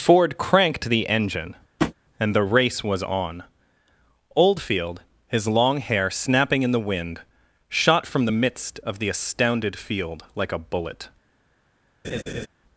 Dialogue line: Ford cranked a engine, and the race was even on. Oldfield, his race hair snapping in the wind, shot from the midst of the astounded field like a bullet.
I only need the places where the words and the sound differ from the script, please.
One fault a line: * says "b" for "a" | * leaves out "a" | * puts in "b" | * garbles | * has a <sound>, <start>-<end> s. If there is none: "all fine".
* says "the" for "a"
* has a tap, 1.8-1.9 s
* leaves out "even"
* says "long" for "race"
* has a laugh, 12.0-12.5 s